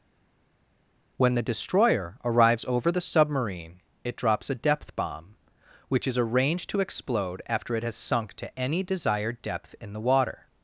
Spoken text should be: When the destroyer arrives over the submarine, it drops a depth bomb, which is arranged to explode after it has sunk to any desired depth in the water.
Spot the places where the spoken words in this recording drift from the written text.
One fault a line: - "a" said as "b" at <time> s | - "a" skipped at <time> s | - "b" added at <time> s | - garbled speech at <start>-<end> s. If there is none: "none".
none